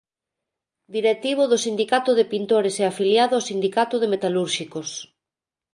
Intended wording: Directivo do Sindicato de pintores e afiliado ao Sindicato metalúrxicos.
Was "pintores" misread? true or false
false